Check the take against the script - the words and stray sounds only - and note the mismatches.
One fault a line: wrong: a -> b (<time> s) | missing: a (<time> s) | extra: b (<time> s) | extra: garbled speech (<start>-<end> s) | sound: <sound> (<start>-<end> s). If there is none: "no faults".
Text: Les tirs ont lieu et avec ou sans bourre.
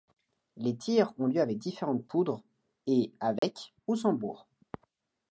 extra: avec différentes poudres (1.4 s)
sound: dropout (3.4-3.4 s)